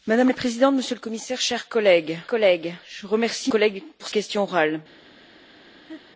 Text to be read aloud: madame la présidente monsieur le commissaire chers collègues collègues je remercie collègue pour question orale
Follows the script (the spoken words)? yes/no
yes